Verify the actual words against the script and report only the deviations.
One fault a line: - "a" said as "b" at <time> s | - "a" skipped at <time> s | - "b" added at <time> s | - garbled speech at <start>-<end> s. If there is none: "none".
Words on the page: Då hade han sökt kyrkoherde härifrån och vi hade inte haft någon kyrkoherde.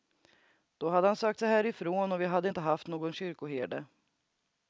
- "kyrkoherde" said as "sig" at 1.4 s